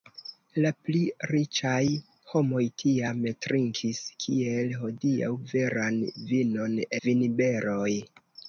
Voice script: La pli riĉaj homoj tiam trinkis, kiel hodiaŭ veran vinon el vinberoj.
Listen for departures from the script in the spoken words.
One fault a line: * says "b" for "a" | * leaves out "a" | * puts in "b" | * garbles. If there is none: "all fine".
* leaves out "el"